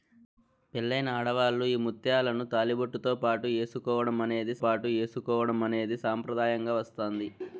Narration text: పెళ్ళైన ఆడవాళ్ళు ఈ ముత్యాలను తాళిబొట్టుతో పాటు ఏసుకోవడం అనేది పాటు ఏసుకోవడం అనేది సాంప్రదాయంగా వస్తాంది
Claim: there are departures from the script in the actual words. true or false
false